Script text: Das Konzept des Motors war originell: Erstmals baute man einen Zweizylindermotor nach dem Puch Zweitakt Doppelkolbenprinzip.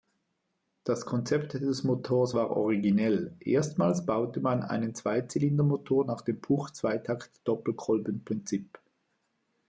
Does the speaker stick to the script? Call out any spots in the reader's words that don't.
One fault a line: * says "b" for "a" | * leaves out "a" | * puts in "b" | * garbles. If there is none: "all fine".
all fine